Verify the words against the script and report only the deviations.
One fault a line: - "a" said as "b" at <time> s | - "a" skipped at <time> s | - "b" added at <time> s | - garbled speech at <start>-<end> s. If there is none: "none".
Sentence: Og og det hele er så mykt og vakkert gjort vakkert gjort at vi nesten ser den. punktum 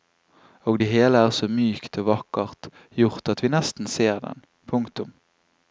- "og" skipped at 0.8 s
- "vakkert gjort" skipped at 3.3 s